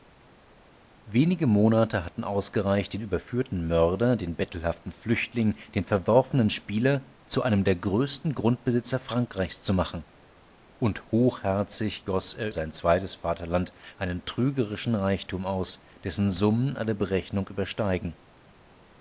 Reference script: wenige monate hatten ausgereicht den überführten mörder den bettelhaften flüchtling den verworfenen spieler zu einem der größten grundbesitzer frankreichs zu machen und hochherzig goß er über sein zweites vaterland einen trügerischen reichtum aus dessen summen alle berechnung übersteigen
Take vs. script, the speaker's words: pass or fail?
fail